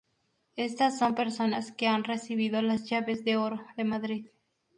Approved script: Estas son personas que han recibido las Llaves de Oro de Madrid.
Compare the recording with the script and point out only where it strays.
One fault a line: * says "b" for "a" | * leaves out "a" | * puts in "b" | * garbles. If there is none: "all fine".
all fine